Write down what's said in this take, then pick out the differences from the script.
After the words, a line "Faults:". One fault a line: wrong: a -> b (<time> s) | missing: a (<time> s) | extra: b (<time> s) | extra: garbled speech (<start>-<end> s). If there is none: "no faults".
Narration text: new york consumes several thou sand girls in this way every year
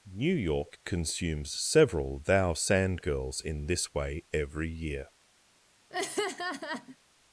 new york consumes several thou sand girls in this way every year
Faults:
no faults